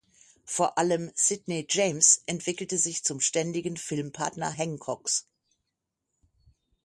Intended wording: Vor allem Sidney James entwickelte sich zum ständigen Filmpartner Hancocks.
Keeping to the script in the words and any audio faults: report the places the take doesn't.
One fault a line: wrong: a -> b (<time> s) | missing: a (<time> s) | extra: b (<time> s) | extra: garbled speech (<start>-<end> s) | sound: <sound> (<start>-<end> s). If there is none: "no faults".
no faults